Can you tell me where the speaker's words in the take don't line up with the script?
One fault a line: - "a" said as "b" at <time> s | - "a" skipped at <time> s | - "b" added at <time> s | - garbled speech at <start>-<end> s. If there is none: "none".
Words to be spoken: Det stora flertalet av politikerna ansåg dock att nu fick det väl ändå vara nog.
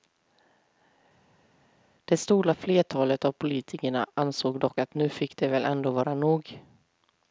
none